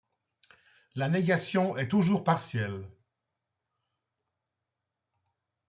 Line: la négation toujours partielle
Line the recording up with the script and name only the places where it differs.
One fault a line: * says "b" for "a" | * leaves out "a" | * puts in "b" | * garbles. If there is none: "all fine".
* puts in "est"